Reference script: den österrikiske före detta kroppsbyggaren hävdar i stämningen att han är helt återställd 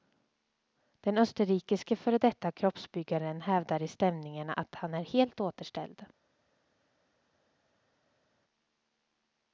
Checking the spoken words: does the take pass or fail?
pass